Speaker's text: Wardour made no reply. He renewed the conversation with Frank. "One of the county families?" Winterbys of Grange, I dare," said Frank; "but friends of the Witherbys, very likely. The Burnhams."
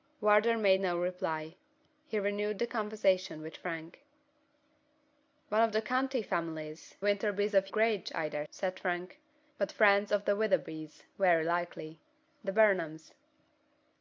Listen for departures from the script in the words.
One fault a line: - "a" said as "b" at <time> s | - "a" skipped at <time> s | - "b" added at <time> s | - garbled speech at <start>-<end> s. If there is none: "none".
none